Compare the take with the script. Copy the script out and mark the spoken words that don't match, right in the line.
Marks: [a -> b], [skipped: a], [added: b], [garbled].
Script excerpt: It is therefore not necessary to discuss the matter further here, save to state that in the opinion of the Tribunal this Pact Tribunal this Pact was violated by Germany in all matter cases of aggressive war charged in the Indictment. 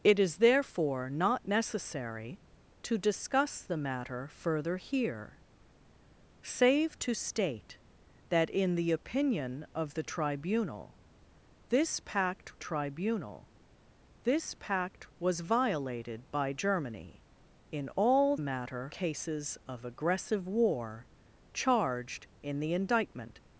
It is therefore not necessary to discuss the matter further here, save to state that in the opinion of the Tribunal this Pact Tribunal this Pact was violated by Germany in all matter cases of aggressive war charged in the Indictment.